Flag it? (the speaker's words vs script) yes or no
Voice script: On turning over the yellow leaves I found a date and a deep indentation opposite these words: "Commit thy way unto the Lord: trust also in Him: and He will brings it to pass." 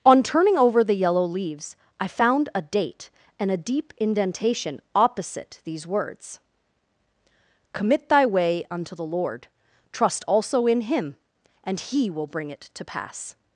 yes